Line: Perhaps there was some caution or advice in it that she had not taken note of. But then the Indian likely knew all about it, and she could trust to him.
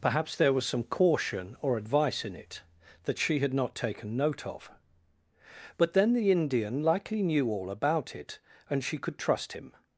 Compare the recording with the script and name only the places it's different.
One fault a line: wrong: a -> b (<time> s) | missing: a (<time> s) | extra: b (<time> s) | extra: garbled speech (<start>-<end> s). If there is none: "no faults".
missing: to (9.5 s)